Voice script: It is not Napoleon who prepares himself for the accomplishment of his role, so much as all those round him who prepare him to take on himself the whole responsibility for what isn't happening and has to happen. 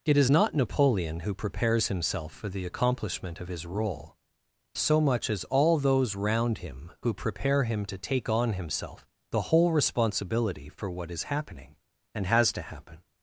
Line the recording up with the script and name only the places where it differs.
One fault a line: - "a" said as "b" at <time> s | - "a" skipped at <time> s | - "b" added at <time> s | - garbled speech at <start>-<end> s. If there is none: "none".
- "isn't" said as "is" at 11.1 s